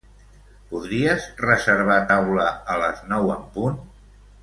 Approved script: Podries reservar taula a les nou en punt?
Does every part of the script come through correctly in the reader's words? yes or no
yes